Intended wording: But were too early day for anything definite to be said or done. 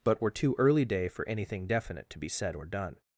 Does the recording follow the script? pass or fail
pass